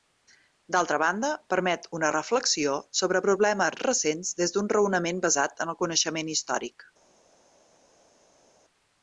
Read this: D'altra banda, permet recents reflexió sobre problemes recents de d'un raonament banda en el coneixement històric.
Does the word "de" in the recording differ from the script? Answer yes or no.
yes